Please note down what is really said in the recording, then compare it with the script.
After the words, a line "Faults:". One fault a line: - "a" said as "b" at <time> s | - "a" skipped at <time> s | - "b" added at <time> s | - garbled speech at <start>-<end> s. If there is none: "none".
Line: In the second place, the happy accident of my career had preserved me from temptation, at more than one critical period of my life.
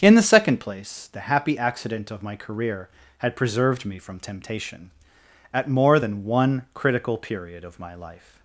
In the second place, the happy accident of my career had preserved me from temptation, at more than one critical period of my life.
Faults:
none